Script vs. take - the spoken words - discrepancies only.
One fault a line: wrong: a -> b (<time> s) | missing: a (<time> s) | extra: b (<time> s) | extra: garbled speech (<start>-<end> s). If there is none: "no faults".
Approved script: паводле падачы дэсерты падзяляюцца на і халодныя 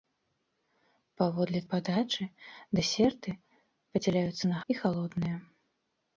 no faults